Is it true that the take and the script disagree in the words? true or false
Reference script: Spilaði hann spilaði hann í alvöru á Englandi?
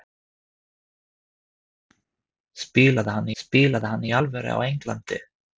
false